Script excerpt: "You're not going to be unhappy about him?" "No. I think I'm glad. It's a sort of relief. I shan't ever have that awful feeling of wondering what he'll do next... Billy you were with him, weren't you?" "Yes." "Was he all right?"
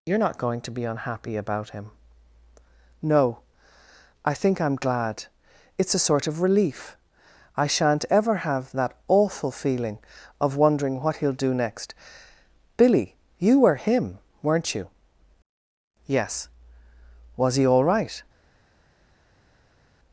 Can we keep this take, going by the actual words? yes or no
no